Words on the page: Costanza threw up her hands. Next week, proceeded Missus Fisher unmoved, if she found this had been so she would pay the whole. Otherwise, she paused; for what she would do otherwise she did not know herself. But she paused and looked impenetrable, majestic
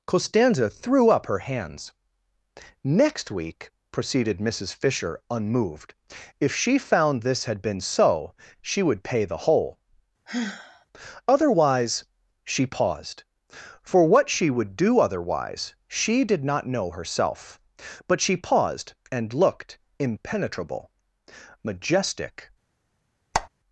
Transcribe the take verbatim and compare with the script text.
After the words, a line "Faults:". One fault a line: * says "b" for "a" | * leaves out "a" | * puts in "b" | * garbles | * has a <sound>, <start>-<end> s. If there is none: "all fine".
Costanza threw up her hands. Next week, proceeded Missus Fisher unmoved, if she found this had been so she would pay the whole. Otherwise, she paused; for what she would do otherwise she did not know herself. But she paused and looked impenetrable, majestic
Faults:
* has a sigh, 10.3-10.9 s
* has a squeak, 23.3-23.5 s